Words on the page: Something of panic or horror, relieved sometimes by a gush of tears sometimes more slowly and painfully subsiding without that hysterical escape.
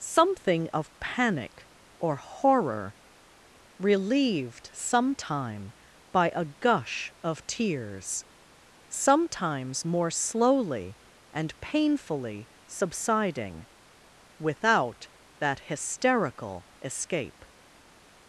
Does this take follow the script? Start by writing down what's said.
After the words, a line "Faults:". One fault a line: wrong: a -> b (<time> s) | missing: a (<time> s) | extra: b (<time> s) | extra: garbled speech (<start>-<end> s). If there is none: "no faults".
Something of panic or horror, relieved sometime by a gush of tears sometimes more slowly and painfully subsiding without that hysterical escape.
Faults:
wrong: sometimes -> sometime (4.7 s)